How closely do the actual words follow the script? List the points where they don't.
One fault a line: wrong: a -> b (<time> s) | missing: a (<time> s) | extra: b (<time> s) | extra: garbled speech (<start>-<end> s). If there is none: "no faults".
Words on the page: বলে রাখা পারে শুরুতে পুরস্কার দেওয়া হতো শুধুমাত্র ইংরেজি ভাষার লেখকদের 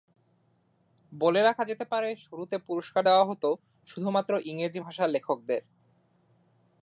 extra: যেতে (1.6 s)